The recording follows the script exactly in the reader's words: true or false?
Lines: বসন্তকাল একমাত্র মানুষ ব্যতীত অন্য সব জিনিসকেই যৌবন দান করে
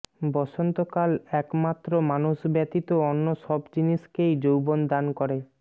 true